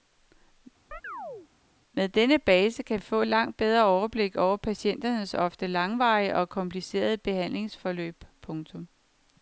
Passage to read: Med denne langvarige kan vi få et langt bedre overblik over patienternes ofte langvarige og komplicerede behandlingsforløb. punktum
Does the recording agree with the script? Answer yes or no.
no